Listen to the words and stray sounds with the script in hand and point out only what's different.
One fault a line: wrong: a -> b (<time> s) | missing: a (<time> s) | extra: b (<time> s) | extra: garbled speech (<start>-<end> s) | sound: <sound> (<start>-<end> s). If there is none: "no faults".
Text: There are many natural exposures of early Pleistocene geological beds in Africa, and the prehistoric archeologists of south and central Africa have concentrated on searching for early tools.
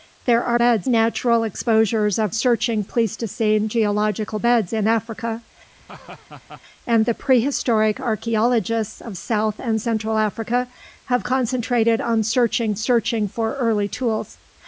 wrong: many -> beds (0.5 s)
wrong: early -> searching (2.3 s)
sound: laugh (5.8-6.6 s)
extra: searching (12.8 s)